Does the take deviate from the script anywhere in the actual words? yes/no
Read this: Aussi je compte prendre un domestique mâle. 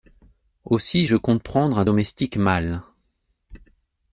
no